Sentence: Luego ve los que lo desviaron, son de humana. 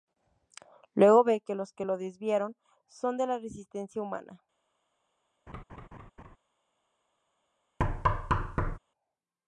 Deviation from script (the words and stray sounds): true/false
true